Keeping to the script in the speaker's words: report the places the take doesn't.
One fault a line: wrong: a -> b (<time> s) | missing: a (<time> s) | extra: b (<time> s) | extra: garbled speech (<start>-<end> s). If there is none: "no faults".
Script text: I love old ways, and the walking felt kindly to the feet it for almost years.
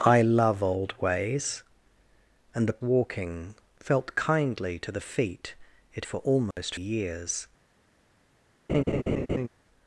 no faults